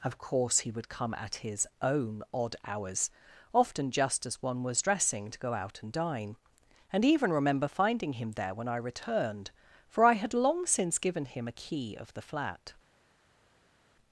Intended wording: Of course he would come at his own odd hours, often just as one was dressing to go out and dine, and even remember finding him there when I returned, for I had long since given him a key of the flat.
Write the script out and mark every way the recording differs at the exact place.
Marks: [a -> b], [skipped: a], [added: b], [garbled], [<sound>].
Of course he would come at his own odd hours, often just as one was dressing to go out and dine, and even remember finding him there when I returned, for I had long since given him a key of the flat.